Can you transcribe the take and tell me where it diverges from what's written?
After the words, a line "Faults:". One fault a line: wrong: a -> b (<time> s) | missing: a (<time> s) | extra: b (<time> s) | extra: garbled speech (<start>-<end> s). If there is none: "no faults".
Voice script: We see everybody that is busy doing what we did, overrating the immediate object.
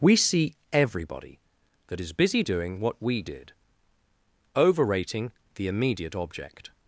We see everybody that is busy doing what we did, overrating the immediate object.
Faults:
no faults